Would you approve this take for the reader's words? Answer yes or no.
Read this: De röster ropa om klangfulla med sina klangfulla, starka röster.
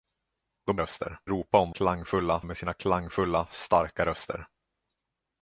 yes